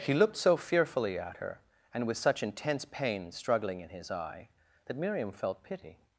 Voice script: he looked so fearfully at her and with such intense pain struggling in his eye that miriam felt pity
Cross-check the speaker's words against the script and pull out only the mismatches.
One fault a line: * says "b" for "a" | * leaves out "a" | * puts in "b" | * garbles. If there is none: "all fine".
all fine